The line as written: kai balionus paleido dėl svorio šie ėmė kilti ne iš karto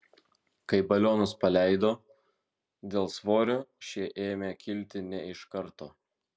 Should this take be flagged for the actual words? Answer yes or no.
no